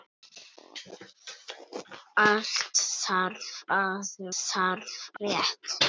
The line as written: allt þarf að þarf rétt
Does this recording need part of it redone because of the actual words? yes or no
no